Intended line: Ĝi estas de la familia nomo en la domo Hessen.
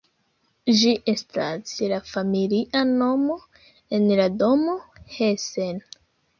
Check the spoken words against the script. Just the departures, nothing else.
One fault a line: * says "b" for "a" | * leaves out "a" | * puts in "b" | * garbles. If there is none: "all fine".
all fine